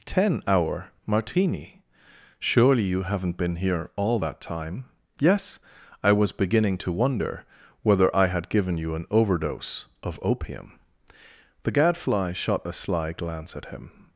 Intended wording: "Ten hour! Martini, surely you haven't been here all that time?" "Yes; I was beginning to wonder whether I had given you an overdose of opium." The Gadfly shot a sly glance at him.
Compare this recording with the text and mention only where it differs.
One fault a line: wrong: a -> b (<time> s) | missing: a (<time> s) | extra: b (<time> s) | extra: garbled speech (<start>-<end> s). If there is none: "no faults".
no faults